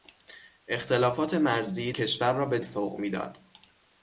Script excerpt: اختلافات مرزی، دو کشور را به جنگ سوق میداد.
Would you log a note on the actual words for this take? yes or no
yes